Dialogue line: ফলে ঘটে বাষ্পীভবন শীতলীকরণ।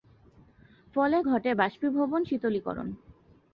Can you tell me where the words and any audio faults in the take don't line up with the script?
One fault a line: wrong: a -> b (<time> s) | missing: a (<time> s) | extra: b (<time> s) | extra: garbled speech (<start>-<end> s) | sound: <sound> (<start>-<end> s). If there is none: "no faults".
no faults